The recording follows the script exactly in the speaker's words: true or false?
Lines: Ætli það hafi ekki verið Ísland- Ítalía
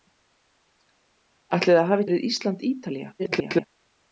false